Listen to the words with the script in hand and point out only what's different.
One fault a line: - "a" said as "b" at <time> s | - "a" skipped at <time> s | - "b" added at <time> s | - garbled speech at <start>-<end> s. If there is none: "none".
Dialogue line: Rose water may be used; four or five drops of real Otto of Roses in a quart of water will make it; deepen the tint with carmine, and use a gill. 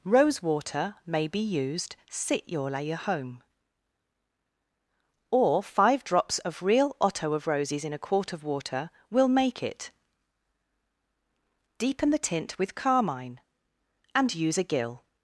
- "four" said as "sit your layer home" at 2.1 s